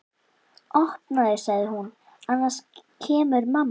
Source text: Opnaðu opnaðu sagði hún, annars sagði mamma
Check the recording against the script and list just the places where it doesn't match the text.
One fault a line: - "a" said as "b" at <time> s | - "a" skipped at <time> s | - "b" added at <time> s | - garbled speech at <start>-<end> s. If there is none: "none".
- "opnaðu" skipped at 1.4 s
- "sagði" said as "kemur" at 3.1 s